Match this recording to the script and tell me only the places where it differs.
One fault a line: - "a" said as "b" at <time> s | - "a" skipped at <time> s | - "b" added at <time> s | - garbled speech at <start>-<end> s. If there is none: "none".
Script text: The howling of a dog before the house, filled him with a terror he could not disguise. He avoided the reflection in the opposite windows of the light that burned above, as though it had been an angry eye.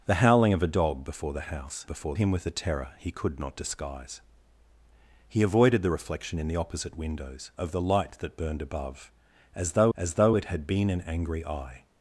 - "filled" said as "before" at 1.9 s
- "as though" added at 10.0 s